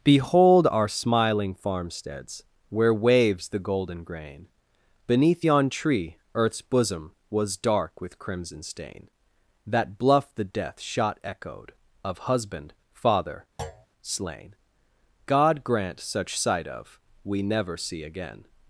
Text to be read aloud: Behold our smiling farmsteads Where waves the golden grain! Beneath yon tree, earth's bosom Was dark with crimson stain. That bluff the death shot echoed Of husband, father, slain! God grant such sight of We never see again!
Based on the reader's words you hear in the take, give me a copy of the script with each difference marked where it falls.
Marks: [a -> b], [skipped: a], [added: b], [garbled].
Behold our smiling farmsteads Where waves the golden grain! Beneath yon tree, earth's bosom Was dark with crimson stain. That bluff the death shot echoed Of husband, father, slain! God grant such sight of We never see again!